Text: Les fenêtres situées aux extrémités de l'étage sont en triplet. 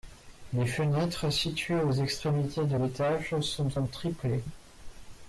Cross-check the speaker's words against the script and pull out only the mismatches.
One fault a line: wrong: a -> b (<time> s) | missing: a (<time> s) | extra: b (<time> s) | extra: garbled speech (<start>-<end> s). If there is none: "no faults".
no faults